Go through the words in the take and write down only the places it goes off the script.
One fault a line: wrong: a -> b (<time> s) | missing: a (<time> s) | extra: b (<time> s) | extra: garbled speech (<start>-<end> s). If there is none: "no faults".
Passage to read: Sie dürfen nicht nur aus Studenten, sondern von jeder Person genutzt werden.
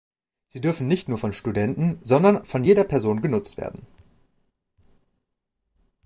wrong: aus -> von (1.2 s)